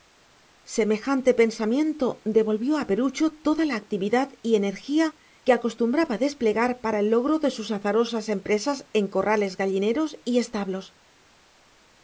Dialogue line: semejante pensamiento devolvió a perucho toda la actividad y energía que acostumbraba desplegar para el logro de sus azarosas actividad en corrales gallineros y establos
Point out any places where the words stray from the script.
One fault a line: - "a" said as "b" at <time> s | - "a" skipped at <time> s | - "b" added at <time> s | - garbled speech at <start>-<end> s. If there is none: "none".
- "actividad" said as "empresas" at 8.3 s